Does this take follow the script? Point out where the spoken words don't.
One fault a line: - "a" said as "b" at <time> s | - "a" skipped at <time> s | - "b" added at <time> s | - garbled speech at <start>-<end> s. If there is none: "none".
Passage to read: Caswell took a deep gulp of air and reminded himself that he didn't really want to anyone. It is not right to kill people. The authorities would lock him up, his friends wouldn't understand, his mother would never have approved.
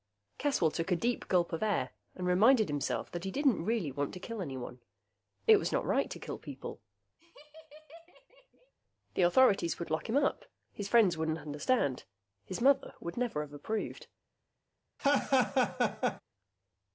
- "kill" added at 4.2 s
- "is" said as "was" at 5.6 s